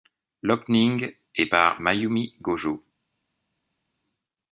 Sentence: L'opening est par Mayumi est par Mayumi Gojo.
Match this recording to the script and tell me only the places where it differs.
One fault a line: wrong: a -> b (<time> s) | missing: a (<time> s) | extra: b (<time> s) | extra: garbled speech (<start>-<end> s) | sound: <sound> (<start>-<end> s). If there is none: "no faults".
missing: est par Mayumi (2.3 s)